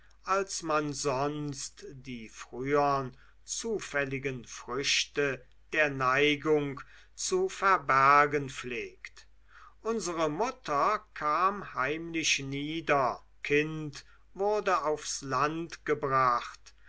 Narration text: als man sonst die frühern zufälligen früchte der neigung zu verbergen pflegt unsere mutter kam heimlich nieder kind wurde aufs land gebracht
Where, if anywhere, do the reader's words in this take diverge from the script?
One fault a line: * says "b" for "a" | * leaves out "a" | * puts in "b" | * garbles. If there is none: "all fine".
all fine